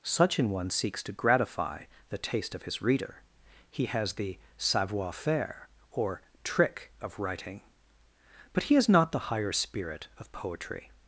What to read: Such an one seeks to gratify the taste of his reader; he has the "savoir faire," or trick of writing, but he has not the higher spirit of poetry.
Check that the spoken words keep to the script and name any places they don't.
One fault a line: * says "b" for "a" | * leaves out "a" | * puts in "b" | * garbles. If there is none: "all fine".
all fine